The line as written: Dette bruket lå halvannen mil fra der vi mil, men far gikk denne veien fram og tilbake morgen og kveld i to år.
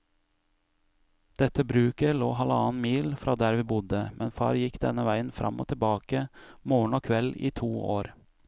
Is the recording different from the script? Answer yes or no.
yes